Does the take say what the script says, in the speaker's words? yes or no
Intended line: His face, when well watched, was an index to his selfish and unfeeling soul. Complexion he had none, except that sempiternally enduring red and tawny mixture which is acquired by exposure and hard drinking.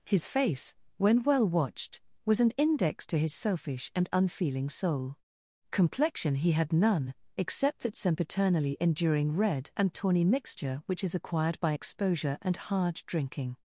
yes